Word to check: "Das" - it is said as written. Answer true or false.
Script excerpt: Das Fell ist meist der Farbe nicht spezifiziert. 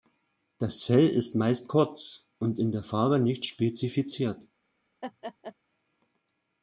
true